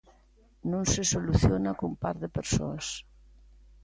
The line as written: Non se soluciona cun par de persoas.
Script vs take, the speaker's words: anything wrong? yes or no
no